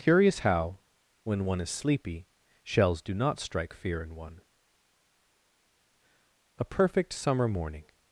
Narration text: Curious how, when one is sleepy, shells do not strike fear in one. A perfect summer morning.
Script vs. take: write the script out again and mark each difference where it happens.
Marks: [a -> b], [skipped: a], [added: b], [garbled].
Curious how, when one is sleepy, shells do not strike fear in one. A perfect summer morning.